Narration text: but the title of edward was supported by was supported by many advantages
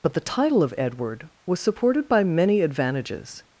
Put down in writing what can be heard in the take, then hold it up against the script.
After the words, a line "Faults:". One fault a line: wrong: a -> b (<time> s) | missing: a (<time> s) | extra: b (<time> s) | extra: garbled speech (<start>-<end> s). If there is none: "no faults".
but the title of edward was supported by many advantages
Faults:
missing: was supported by (2.2 s)